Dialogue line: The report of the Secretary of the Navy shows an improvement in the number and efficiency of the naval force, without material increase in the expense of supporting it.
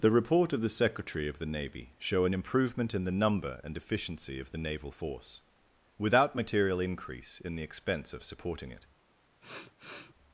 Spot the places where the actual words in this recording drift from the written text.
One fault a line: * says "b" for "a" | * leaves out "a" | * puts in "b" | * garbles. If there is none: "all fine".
* says "show" for "shows"